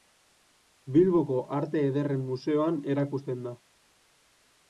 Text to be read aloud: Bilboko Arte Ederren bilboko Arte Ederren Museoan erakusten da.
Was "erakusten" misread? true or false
false